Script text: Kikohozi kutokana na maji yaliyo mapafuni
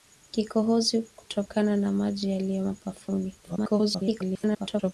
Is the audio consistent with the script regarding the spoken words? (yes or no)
no